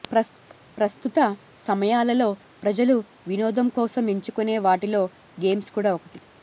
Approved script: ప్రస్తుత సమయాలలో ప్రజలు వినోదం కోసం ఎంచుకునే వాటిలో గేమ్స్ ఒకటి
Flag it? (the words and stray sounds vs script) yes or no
yes